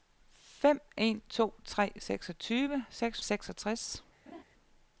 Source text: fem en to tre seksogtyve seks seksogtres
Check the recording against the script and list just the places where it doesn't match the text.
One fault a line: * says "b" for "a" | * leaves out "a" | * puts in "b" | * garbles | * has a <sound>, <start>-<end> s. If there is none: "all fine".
* has a laugh, 4.3-4.4 s